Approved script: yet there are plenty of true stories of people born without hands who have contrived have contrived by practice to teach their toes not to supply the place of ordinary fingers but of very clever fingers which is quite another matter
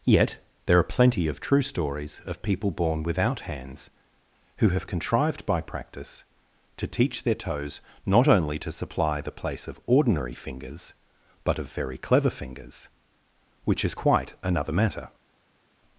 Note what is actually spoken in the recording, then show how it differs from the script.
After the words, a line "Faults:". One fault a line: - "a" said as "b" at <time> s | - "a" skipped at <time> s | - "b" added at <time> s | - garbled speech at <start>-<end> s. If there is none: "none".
yet there are plenty of true stories of people born without hands who have contrived by practice to teach their toes not only to supply the place of ordinary fingers but of very clever fingers which is quite another matter
Faults:
- "have contrived" skipped at 5.5 s
- "only" added at 8.3 s